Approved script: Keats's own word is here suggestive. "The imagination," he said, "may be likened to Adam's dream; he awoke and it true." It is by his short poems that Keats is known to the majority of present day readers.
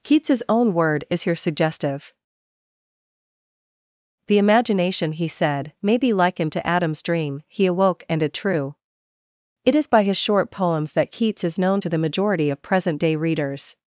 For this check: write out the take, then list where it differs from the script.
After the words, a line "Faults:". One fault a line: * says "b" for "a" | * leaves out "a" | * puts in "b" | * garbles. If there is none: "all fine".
Keats's own word is here suggestive. "The imagination," he said, "may be likened to Adam's dream; he awoke and it true." It is by his short poems that Keats is known to the majority of present day readers.
Faults:
all fine